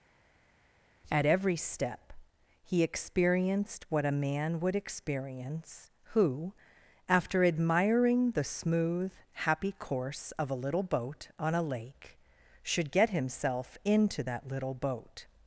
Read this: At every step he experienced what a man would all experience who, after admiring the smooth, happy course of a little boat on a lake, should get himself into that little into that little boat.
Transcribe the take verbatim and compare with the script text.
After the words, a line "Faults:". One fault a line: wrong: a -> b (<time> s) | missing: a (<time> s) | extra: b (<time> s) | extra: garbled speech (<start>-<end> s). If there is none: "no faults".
At every step he experienced what a man would experience who, after admiring the smooth, happy course of a little boat on a lake, should get himself into that little boat.
Faults:
missing: all (4.8 s)
missing: into that little (14.7 s)